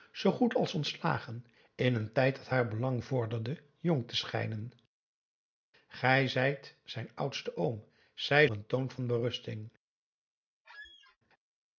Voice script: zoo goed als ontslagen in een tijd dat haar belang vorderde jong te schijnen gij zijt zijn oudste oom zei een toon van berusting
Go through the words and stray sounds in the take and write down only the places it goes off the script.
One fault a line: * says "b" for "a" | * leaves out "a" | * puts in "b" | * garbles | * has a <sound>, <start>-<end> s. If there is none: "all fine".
* has a squeak, 10.6-11.2 s